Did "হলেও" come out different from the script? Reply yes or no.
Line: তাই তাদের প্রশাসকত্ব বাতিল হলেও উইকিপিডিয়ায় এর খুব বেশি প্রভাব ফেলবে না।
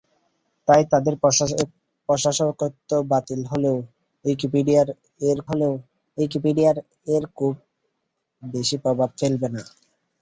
no